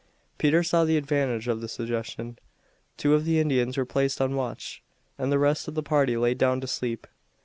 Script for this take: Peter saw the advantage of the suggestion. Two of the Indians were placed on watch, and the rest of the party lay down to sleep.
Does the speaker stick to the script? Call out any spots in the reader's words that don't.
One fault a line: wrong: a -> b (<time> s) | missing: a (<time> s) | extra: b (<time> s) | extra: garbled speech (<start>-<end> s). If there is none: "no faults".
no faults